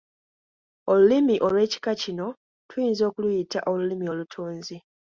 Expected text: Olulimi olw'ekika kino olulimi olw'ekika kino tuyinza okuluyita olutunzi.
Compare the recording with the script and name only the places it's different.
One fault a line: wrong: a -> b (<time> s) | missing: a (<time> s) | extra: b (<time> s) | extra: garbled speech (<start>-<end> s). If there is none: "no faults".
missing: olulimi olw'ekika kino (2.3 s)
extra: olulimi (3.7 s)